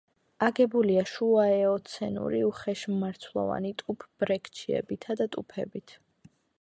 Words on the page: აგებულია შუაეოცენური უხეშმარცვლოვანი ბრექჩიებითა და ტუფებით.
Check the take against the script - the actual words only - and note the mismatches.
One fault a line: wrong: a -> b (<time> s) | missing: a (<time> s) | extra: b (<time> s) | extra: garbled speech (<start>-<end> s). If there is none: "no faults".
extra: ტუფ (3.8 s)